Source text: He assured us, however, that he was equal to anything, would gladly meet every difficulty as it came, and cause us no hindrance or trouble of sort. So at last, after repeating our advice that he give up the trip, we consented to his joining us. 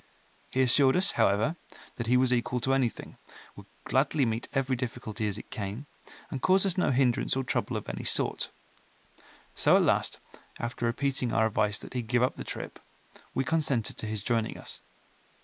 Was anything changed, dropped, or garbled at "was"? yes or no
no